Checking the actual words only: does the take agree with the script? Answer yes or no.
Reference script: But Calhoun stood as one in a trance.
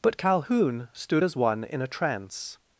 yes